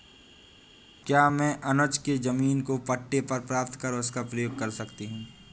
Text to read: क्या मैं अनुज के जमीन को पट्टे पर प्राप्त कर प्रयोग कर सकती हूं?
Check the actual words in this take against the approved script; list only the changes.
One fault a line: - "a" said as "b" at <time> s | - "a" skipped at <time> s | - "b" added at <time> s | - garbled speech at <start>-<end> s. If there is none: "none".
- "उसका" added at 3.9 s